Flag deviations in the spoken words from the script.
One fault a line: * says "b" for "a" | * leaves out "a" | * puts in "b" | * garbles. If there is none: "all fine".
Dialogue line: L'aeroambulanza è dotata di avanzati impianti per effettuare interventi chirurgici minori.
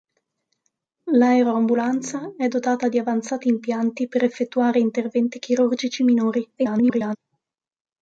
* garbles